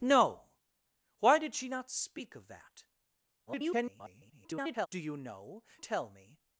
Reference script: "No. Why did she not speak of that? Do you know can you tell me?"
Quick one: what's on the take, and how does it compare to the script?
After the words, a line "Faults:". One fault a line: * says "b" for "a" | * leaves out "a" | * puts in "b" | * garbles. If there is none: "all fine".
"No. Why did she not speak of that? [garbled] Do you know tell me?"
Faults:
* garbles
* leaves out "can you"